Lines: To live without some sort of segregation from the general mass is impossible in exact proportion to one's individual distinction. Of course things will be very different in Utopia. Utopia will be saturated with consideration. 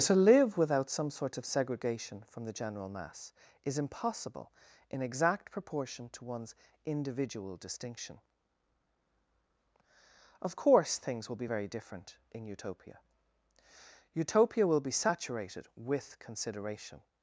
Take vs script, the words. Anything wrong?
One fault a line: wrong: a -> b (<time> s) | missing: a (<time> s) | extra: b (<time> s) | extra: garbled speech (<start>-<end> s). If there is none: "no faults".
no faults